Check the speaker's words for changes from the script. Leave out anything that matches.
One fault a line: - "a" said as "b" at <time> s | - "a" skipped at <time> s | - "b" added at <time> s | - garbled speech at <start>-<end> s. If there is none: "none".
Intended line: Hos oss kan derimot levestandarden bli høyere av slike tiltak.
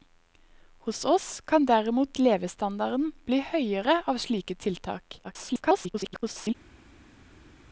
- garbled speech at 5.2-6.5 s